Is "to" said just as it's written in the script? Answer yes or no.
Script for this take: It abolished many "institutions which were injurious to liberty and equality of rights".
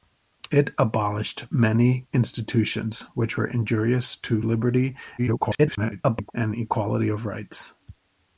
yes